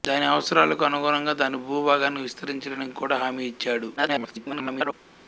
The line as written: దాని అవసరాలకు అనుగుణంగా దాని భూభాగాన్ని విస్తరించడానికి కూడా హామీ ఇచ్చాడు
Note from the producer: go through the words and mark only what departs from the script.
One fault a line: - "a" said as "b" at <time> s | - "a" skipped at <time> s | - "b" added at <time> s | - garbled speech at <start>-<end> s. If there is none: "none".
- garbled speech at 4.0-4.9 s